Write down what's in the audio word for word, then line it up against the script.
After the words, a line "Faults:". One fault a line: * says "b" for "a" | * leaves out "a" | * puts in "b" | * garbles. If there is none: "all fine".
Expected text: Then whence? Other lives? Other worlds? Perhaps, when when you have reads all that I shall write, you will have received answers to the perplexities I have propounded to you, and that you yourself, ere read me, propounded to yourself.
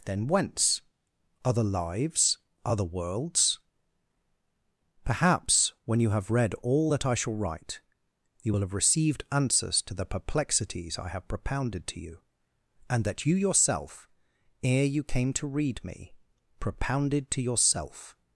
Then whence? Other lives? Other worlds? Perhaps, when you have read all that I shall write, you will have received answers to the perplexities I have propounded to you, and that you yourself, ere you came to read me, propounded to yourself.
Faults:
* leaves out "when"
* says "read" for "reads"
* puts in "you came to"